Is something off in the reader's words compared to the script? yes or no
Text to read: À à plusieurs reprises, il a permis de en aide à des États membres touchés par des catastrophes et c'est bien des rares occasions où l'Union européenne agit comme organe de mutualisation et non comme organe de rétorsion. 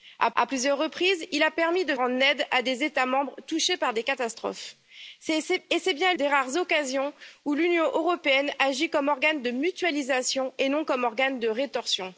no